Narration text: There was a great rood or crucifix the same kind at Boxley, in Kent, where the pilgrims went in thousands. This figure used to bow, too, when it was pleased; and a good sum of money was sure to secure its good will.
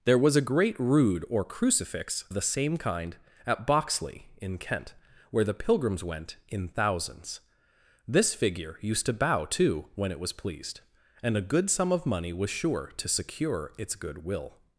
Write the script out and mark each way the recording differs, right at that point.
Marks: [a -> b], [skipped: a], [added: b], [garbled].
There was a great rood or crucifix the same kind at Boxley, in Kent, where the pilgrims went in thousands. This figure used to bow, too, when it was pleased; and a good sum of money was sure to secure its good will.